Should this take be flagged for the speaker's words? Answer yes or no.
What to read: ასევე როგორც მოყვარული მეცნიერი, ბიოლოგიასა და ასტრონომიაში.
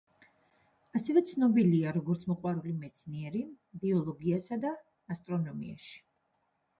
yes